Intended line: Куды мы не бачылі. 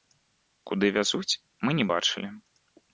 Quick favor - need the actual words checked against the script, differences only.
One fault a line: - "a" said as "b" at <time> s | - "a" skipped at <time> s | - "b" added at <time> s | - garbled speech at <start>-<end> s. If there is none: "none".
- "вязуць" added at 1.0 s